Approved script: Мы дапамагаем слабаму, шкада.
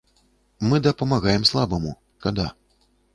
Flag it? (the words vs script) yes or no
no